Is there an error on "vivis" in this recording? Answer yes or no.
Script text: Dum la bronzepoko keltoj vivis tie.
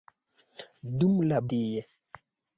yes